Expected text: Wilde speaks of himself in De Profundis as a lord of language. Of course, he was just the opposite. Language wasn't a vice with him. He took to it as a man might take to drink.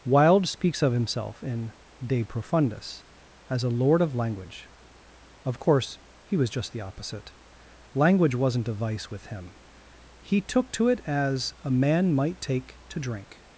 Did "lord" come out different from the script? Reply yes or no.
no